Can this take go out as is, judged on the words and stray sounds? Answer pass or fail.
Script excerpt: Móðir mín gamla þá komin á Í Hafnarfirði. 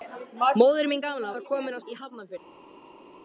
pass